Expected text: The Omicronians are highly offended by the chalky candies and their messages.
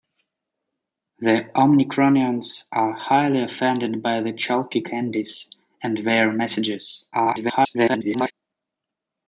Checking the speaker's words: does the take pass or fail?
fail